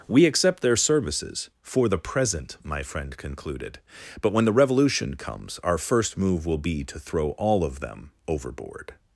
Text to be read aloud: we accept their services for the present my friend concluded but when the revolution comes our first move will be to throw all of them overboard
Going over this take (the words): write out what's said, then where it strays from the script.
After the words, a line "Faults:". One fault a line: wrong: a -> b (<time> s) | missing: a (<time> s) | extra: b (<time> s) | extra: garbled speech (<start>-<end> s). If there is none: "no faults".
we accept their services for the present my friend concluded but when the revolution comes our first move will be to throw all of them overboard
Faults:
no faults